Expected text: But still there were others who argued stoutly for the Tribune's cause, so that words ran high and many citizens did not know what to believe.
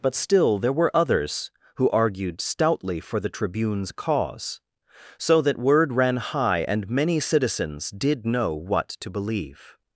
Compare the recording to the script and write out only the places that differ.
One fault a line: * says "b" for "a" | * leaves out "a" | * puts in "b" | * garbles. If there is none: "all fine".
* says "word" for "words"
* leaves out "not"